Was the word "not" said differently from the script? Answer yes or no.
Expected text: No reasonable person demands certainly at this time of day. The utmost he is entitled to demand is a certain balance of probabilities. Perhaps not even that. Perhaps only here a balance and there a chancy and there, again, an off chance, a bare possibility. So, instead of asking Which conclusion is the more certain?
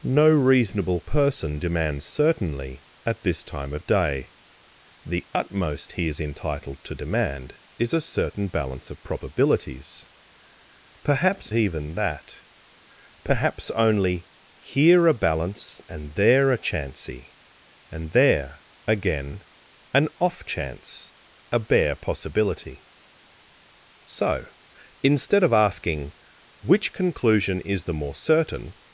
yes